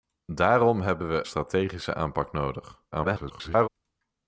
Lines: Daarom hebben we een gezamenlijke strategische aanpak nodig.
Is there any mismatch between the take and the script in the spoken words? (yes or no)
yes